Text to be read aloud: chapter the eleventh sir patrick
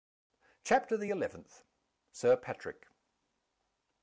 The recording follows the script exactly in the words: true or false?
true